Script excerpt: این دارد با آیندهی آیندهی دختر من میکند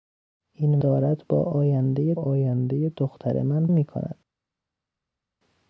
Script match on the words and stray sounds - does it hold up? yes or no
yes